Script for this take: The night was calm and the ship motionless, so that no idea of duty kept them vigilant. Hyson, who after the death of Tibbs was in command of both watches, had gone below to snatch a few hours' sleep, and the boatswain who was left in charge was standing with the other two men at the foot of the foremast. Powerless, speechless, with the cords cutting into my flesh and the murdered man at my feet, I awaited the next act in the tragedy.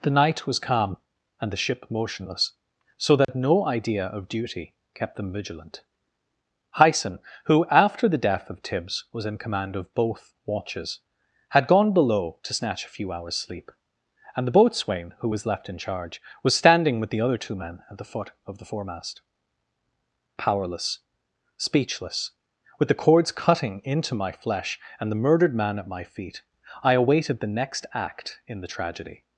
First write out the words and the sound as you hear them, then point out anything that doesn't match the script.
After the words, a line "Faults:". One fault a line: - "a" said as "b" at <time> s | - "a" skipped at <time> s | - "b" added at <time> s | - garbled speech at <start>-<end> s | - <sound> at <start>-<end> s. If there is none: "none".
The night was calm and the ship motionless, so that no idea of duty kept them vigilant. Hyson, who after the death of Tibbs was in command of both watches, had gone below to snatch a few hours' sleep, and the boatswain who was left in charge was standing with the other two men at the foot of the foremast. Powerless, speechless, with the cords cutting into my flesh and the murdered man at my feet, I awaited the next act in the tragedy.
Faults:
- dropout at 3.2-3.3 s